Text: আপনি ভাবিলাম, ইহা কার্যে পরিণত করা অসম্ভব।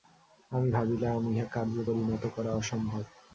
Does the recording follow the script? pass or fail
fail